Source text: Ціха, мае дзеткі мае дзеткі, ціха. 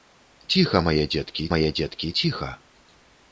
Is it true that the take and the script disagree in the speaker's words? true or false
false